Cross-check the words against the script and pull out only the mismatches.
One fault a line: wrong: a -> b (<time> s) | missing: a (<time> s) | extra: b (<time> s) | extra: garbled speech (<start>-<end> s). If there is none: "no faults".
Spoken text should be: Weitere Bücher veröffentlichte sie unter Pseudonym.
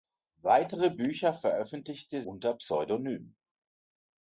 missing: sie (2.2 s)